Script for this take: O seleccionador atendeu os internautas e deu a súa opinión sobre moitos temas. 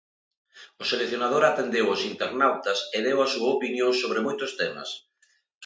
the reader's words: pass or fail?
pass